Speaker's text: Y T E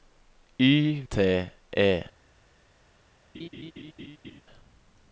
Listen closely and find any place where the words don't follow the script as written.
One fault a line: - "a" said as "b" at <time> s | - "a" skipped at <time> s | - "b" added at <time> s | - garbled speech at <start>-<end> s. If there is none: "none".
none